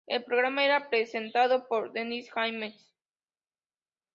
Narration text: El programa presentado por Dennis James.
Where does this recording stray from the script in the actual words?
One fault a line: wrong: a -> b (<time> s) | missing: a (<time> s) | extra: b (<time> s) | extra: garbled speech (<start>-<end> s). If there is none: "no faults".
extra: era (0.7 s)